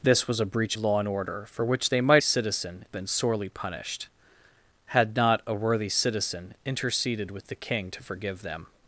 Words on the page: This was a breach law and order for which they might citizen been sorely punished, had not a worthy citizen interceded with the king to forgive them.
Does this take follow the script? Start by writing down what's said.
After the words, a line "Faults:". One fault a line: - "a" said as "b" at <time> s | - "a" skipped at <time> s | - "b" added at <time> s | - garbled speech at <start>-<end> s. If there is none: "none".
This was a breach law and order for which they might citizen been sorely punished, had not a worthy citizen interceded with the king to forgive them.
Faults:
none